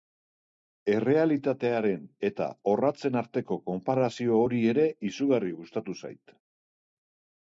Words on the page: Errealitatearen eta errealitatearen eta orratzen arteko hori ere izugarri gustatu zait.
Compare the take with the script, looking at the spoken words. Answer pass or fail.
fail